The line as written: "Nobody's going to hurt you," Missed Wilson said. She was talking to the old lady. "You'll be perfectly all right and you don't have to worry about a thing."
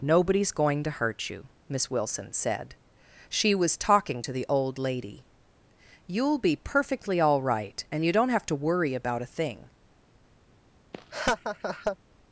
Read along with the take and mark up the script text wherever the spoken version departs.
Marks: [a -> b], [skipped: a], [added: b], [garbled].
"Nobody's going to hurt you," [Missed -> Miss] Wilson said. She was talking to the old lady. "You'll be perfectly all right and you don't have to worry about a thing."